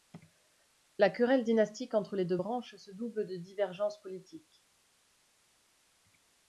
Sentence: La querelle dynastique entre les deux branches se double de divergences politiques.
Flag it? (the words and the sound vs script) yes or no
no